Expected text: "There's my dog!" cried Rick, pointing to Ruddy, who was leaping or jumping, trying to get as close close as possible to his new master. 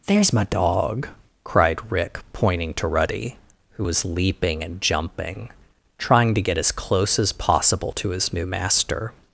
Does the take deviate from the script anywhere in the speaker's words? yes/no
yes